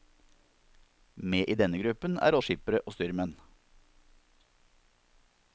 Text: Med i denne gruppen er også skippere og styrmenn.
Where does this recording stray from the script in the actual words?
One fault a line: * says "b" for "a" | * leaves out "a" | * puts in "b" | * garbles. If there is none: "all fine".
* leaves out "også"